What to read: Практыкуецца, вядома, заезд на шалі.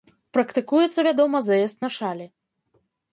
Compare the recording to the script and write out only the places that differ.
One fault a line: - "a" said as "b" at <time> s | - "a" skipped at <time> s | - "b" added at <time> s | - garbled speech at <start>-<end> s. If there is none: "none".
none